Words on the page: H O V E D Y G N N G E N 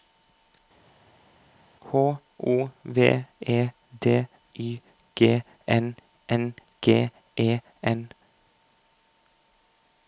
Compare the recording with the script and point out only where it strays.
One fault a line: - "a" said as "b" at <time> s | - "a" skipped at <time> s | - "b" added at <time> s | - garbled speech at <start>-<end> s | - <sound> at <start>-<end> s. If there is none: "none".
none